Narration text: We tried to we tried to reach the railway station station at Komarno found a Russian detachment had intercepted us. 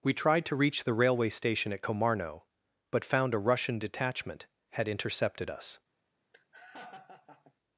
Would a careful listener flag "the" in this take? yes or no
no